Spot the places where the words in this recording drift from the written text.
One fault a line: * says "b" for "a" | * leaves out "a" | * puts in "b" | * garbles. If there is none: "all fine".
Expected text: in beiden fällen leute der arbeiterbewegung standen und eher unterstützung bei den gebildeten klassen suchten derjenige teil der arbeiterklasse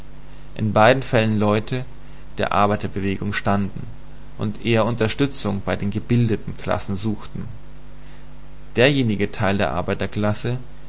all fine